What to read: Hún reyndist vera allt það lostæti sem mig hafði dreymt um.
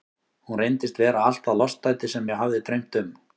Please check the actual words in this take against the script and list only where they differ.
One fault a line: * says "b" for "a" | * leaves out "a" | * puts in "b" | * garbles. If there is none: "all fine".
all fine